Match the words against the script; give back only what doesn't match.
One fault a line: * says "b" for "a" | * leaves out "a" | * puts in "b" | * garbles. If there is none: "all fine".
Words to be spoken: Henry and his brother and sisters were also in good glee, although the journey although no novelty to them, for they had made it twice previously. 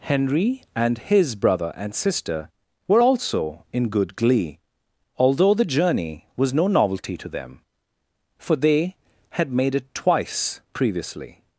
* says "sister" for "sisters"
* says "was" for "although"